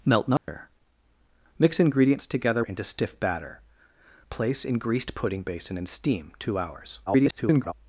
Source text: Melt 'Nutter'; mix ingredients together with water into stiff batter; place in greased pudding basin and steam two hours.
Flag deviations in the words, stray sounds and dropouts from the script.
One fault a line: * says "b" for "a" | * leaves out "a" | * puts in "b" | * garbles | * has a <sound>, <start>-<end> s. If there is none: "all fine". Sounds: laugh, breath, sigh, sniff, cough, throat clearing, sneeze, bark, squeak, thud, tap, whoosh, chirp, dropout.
* has a dropout, 0.4-0.5 s
* leaves out "with water"
* garbles